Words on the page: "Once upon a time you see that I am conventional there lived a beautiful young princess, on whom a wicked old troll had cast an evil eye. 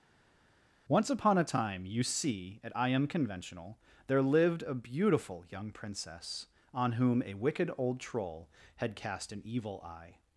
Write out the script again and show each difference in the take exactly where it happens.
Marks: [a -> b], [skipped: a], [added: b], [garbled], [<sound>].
"Once upon a time you see [that -> at] I am conventional there lived a beautiful young princess, on whom a wicked old troll had cast an evil eye.